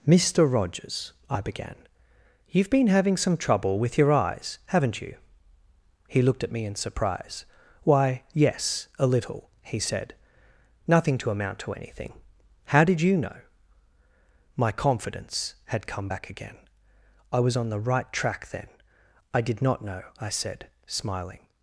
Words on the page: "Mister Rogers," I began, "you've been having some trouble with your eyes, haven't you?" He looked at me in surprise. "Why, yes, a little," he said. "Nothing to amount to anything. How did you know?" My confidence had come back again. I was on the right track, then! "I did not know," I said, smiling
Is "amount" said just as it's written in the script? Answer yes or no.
yes